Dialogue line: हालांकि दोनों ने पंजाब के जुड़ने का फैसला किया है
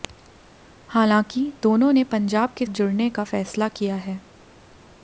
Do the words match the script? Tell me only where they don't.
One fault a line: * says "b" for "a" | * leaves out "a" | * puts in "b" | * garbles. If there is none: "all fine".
all fine